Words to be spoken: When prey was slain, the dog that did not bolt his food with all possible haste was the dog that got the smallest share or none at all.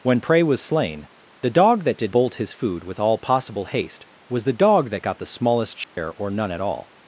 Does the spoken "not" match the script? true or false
false